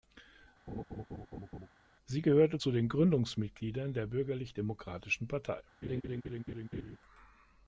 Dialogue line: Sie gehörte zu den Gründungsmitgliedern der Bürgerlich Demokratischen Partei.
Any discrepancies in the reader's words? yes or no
no